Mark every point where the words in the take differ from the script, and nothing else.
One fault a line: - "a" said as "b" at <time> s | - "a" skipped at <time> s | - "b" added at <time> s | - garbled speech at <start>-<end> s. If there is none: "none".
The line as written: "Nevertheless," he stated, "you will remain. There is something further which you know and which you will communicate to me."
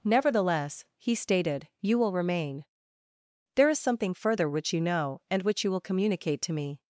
none